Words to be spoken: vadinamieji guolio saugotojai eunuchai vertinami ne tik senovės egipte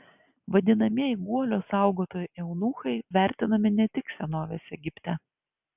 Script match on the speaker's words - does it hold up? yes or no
yes